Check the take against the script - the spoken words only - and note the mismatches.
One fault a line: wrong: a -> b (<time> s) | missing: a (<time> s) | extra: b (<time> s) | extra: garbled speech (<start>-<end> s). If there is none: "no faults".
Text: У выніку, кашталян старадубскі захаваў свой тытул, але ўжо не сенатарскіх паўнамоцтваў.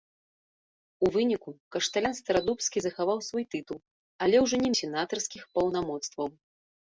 no faults